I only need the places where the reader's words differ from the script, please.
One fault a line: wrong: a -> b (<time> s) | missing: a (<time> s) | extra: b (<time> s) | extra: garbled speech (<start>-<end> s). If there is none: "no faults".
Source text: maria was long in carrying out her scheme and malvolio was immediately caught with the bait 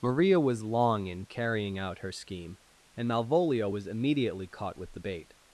no faults